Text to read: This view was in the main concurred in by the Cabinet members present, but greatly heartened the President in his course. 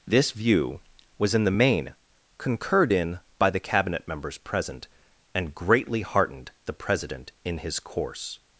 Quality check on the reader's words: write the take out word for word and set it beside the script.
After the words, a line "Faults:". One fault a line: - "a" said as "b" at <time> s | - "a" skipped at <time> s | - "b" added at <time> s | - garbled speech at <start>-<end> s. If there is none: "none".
This view was in the main concurred in by the Cabinet members present, and greatly heartened the President in his course.
Faults:
- "but" said as "and" at 5.3 s